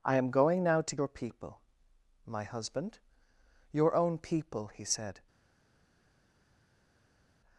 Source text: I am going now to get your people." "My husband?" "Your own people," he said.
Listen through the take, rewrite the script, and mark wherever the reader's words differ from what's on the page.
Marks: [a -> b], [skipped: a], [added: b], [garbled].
I am going now to [skipped: get] your people." "My husband?" "Your own people," he said.